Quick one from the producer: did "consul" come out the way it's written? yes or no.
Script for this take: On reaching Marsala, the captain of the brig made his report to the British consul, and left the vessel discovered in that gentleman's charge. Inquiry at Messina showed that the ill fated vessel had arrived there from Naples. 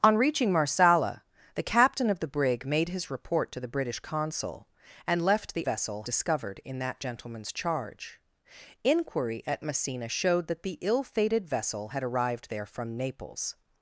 yes